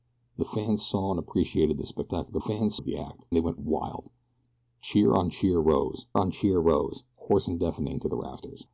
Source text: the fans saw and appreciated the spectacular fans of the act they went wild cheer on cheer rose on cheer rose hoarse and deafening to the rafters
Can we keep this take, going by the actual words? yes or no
yes